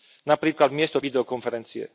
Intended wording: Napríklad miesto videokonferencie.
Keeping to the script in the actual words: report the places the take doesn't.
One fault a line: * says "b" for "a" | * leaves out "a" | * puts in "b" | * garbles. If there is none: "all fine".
all fine